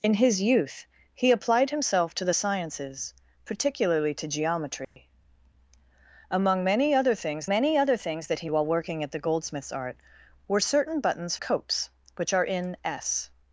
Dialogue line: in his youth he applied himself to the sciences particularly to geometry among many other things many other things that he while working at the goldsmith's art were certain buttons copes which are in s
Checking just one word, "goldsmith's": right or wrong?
right